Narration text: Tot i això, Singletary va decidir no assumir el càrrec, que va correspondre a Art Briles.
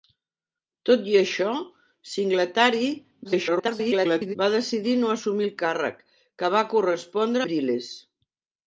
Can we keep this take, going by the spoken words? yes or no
no